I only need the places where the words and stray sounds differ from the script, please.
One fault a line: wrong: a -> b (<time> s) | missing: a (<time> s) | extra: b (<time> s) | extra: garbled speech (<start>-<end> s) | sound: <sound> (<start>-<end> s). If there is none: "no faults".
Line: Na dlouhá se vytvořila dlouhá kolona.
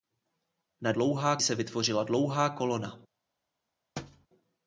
sound: thud (4.0-4.3 s)